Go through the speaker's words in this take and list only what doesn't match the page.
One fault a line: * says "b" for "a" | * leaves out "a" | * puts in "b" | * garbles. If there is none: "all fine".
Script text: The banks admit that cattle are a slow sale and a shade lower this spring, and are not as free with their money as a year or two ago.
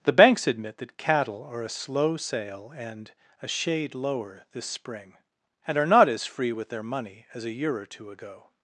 all fine